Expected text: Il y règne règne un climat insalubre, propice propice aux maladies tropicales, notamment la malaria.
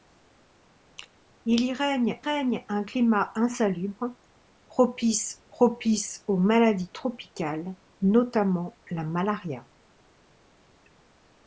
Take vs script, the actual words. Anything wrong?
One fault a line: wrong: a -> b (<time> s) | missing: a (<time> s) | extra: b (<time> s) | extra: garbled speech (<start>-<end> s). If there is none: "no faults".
no faults